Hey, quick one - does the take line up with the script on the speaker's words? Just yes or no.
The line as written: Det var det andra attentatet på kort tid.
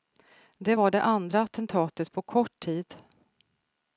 yes